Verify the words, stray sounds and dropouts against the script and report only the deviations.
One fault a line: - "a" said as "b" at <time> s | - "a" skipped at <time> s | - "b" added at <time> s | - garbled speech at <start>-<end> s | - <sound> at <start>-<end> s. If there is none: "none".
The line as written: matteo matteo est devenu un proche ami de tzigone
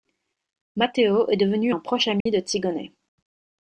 - "matteo" skipped at 1.3 s
- dropout at 2.2-2.3 s